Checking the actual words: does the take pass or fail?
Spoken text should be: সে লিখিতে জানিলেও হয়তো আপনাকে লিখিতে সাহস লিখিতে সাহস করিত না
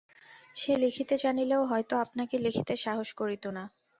fail